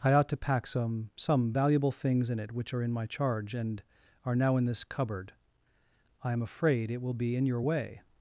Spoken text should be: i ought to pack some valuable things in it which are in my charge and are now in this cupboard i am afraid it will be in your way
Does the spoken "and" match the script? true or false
true